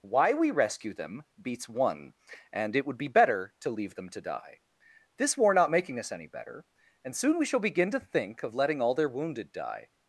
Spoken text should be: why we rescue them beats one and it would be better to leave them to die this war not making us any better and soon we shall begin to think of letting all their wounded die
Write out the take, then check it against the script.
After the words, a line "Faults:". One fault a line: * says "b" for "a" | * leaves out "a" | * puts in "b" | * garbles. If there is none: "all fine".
why we rescue them beats one and it would be better to leave them to die this war not making us any better and soon we shall begin to think of letting all their wounded die
Faults:
all fine